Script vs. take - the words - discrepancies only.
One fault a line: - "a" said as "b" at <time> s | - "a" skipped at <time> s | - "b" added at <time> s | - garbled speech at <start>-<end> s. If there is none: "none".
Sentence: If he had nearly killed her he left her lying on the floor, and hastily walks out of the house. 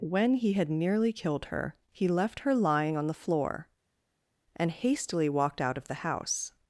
- "If" said as "When" at 0.0 s
- "walks" said as "walked" at 5.3 s